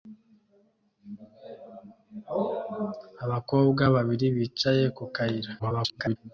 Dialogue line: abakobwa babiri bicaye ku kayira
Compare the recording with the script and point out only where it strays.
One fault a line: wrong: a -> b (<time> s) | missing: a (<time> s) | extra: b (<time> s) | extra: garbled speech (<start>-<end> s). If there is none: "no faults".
extra: garbled speech (5.6-6.2 s)